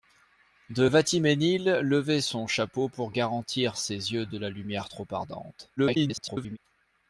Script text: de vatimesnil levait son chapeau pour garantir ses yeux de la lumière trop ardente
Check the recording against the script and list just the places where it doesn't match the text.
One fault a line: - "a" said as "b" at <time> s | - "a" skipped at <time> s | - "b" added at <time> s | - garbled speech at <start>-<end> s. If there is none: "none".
- garbled speech at 5.8-6.6 s